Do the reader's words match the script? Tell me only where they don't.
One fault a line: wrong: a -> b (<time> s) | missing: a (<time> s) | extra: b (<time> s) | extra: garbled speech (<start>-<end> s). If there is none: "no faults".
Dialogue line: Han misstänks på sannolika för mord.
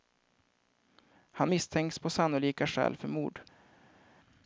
extra: skäl (2.7 s)